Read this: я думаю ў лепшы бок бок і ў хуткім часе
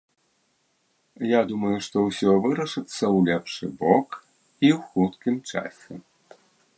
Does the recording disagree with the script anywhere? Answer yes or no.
yes